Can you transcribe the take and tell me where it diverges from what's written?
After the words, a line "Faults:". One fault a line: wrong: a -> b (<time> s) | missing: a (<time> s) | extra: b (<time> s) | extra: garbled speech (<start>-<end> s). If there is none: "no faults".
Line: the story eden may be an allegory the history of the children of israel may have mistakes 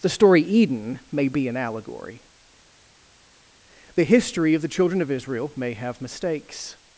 the story eden may be an allegory the history of the children of israel may have mistakes
Faults:
no faults